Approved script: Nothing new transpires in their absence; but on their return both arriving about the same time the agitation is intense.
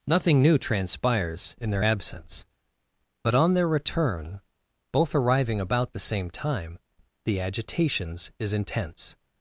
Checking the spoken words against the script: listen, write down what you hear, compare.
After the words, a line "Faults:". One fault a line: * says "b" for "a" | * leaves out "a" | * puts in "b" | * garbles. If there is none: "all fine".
Nothing new transpires in their absence; but on their return both arriving about the same time the agitations is intense.
Faults:
* says "agitations" for "agitation"